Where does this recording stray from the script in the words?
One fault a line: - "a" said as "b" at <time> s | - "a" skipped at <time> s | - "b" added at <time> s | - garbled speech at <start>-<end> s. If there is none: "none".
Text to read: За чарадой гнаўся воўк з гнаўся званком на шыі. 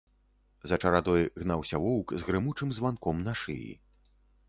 - "гнаўся" said as "грымучым" at 2.3 s